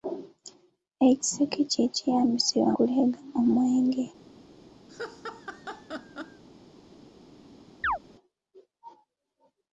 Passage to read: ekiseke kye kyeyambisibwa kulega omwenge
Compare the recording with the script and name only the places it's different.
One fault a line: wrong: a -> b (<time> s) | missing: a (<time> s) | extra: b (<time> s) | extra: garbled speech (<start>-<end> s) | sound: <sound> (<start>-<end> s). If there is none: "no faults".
sound: laugh (4.9-6.4 s)
sound: chirp (7.8-8.0 s)